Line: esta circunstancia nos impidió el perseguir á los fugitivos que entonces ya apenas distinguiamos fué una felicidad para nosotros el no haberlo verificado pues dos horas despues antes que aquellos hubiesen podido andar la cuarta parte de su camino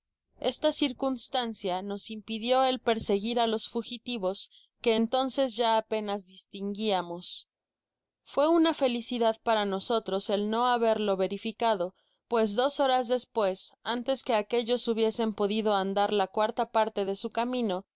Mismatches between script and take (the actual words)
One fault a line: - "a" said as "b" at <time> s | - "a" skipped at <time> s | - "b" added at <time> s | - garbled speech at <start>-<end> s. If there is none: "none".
none